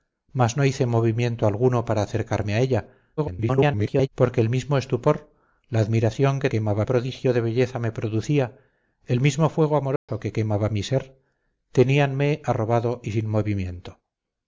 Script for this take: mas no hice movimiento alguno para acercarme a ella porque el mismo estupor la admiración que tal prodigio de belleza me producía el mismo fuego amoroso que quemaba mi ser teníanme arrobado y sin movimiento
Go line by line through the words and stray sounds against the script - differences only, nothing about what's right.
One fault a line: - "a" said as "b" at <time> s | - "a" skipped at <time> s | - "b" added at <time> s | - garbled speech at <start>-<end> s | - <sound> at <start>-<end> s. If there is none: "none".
- garbled speech at 3.2-4.1 s
- "tal" said as "quemaba" at 6.5 s
- dropout at 10.0-10.1 s